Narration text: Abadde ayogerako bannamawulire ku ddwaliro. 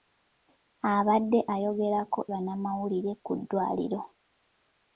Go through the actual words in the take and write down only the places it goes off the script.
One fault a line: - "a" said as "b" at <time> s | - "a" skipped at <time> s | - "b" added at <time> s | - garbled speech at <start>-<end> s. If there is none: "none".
none